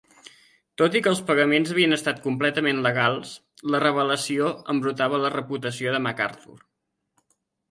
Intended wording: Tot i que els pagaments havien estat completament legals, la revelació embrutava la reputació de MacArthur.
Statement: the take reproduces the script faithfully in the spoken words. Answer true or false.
true